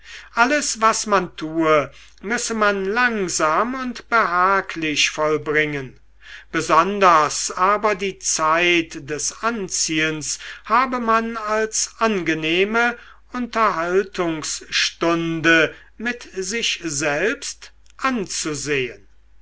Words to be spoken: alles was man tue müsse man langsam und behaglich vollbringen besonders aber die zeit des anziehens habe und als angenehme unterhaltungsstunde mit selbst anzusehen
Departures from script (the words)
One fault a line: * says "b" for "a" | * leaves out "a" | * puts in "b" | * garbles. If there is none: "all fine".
* says "man" for "und"
* puts in "sich"